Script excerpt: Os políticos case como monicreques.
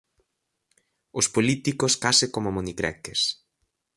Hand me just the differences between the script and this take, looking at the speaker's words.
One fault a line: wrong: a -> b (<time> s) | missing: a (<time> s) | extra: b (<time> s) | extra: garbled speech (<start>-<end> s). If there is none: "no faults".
no faults